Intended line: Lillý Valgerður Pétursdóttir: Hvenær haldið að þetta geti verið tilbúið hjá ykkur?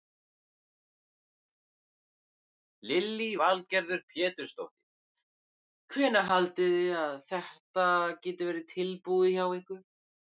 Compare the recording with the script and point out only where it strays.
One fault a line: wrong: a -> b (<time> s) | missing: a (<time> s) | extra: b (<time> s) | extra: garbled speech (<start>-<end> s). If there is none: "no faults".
extra: þið (6.8 s)